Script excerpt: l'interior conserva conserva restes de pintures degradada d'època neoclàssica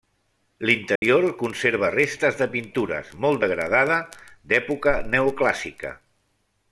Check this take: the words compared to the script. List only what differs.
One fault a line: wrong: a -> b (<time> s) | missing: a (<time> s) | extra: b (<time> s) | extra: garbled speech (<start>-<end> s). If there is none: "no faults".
missing: conserva (1.9 s)
extra: molt (3.3 s)